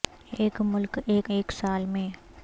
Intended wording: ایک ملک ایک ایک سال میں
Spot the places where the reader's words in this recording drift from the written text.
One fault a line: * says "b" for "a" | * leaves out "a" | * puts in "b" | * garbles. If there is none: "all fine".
all fine